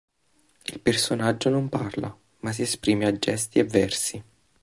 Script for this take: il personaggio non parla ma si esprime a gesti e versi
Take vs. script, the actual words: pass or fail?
pass